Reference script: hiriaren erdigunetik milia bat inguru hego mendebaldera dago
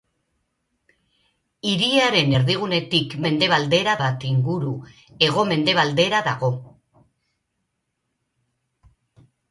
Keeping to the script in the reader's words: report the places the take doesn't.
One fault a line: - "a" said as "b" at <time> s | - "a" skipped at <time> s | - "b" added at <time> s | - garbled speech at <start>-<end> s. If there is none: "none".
- "milia" said as "mendebaldera" at 3.3 s